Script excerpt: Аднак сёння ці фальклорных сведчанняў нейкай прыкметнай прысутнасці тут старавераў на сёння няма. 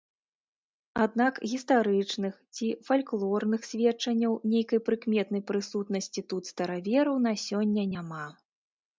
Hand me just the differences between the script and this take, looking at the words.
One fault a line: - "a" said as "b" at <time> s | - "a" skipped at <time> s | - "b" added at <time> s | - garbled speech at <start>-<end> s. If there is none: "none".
- "сёння" said as "гістарычных" at 1.5 s